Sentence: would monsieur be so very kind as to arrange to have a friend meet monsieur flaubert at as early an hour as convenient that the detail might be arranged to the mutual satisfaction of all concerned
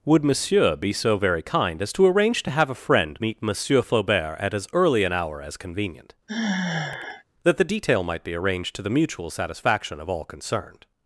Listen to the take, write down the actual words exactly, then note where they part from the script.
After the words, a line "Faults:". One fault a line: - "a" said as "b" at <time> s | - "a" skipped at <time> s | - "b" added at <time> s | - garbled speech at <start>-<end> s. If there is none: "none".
would monsieur be so very kind as to arrange to have a friend meet monsieur flaubert at as early an hour as convenient that the detail might be arranged to the mutual satisfaction of all concerned
Faults:
none